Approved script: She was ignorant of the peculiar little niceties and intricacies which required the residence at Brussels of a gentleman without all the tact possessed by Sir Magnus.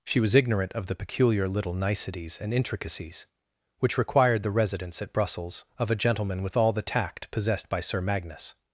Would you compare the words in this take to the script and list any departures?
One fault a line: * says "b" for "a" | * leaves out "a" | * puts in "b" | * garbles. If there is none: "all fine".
* says "with" for "without"